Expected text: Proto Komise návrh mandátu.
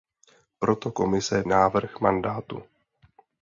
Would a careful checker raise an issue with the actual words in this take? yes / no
no